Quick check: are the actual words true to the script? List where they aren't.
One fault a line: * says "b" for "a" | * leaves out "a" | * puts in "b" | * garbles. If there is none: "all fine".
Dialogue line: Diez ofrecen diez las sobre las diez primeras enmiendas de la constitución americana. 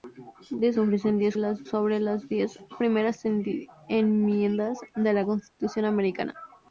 all fine